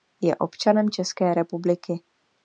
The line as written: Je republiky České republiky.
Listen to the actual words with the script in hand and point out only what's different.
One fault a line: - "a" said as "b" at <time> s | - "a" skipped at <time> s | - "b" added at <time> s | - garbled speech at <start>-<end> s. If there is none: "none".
- "republiky" said as "občanem" at 0.3 s